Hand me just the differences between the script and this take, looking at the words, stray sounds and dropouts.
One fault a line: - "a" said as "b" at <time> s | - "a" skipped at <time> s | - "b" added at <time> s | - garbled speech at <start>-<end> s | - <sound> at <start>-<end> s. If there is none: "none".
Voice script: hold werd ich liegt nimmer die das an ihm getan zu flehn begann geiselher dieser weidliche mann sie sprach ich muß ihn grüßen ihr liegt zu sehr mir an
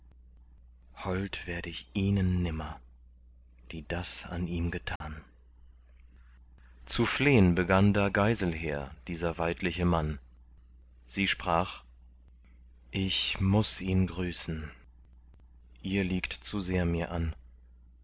- "liegt" said as "ihnen" at 1.9 s
- dropout at 5.0-5.0 s
- "da" added at 7.9 s